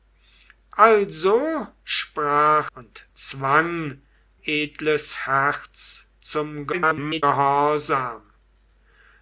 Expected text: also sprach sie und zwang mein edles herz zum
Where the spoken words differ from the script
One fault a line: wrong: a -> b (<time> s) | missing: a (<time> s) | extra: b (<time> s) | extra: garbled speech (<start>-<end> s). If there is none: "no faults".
missing: sie (2.7 s)
missing: mein (4.0 s)
extra: garbled speech (6.7-7.2 s)